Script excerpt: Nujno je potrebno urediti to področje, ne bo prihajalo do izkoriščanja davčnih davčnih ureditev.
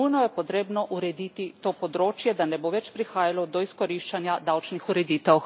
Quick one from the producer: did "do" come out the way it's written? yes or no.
yes